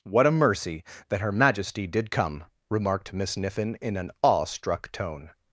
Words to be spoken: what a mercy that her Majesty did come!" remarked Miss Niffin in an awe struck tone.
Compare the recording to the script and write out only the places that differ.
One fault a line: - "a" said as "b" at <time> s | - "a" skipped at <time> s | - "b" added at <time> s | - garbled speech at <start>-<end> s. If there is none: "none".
none